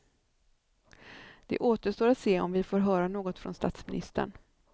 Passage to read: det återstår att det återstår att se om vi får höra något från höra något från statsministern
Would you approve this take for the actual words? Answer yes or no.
no